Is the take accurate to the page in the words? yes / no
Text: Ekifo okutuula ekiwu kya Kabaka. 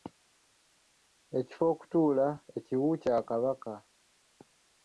yes